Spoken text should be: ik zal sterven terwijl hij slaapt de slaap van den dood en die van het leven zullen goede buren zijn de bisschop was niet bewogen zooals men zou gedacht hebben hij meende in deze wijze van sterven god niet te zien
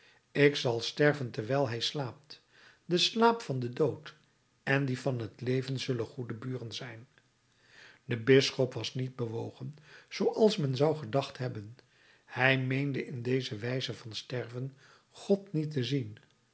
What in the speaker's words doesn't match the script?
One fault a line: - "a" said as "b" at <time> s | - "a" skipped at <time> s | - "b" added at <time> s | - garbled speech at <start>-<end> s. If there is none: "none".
none